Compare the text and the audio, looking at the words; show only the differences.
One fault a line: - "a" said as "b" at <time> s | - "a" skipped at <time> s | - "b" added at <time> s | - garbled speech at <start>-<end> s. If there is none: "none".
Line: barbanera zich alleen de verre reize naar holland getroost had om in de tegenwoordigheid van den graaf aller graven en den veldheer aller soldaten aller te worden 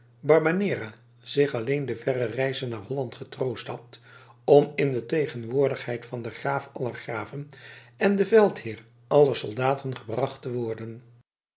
- "aller" said as "gebracht" at 10.0 s